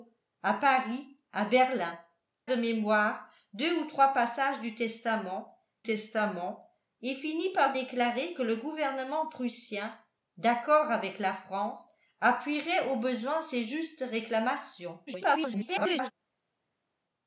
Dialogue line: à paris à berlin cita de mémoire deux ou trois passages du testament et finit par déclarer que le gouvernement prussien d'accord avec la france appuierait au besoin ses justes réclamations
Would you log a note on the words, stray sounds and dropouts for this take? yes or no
yes